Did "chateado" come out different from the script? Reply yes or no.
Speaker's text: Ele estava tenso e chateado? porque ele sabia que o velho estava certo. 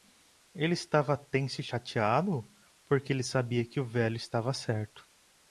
no